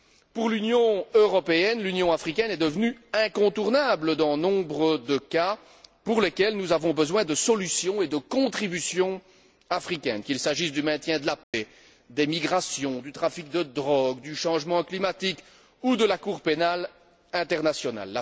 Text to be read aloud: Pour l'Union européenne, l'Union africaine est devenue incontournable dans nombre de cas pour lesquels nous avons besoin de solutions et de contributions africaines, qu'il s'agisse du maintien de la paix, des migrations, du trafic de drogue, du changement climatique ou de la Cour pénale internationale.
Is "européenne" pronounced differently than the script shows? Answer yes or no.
no